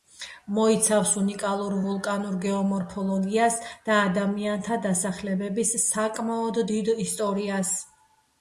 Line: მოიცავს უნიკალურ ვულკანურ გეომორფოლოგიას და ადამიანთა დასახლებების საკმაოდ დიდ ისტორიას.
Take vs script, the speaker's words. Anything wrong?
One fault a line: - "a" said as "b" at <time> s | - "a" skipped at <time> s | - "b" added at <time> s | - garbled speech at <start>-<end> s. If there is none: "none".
none